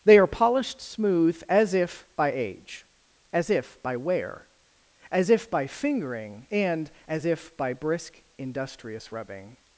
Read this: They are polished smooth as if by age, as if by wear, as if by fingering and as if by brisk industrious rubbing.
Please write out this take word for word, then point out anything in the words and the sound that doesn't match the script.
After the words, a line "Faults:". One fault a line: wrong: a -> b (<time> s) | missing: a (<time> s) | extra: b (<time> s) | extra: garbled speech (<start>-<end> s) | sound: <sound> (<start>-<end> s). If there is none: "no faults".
They are polished smooth as if by age, as if by wear, as if by fingering and as if by brisk industrious rubbing.
Faults:
no faults